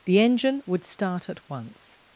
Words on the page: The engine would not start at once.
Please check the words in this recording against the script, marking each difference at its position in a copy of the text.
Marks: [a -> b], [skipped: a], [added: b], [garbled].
The engine would [skipped: not] start at once.